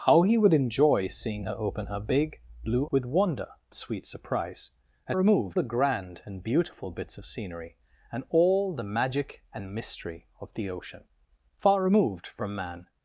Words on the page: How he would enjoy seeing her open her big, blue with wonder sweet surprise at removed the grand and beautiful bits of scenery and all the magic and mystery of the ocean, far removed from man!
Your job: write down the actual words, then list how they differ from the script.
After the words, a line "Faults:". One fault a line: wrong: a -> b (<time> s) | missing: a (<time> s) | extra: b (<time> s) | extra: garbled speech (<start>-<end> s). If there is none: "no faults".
How he would enjoy seeing her open her big, blue with wonder sweet surprise at removed the grand and beautiful bits of scenery and all the magic and mystery of the ocean, far removed from man!
Faults:
no faults